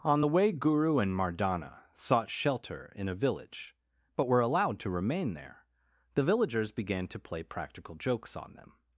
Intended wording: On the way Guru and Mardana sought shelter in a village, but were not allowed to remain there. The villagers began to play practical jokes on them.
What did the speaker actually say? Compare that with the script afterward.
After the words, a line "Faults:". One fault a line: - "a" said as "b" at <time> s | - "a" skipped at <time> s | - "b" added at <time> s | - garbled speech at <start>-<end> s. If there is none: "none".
On the way Guru and Mardana sought shelter in a village, but were allowed to remain there. The villagers began to play practical jokes on them.
Faults:
- "not" skipped at 4.4 s